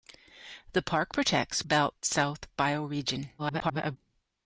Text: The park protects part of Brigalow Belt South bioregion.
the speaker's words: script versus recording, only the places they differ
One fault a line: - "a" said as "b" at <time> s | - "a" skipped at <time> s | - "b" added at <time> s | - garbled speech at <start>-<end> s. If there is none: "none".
- "part of Brigalow" skipped at 1.6 s
- garbled speech at 3.4-4.0 s